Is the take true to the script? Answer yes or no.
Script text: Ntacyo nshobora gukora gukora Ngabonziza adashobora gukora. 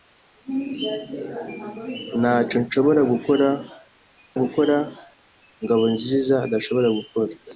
yes